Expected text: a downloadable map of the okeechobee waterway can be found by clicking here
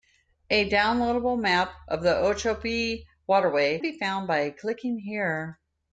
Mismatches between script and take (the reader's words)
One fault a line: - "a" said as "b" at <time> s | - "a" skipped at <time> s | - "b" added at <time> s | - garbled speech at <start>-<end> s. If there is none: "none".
- "can" skipped at 3.8 s